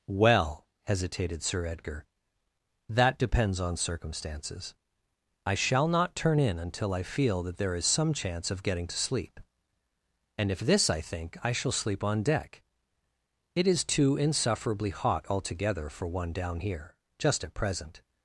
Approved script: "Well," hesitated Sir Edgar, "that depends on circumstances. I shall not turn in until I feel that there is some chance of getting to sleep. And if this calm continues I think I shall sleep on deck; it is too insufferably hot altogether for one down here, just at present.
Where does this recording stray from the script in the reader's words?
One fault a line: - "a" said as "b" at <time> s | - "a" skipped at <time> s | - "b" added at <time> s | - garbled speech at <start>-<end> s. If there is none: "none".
- "calm continues" skipped at 10.9 s